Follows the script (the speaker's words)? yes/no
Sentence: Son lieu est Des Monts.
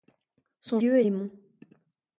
yes